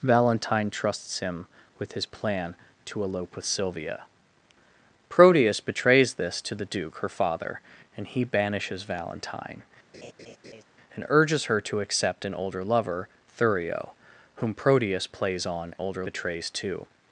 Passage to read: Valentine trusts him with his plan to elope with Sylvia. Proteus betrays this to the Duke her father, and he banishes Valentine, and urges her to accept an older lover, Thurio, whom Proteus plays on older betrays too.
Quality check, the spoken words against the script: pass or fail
pass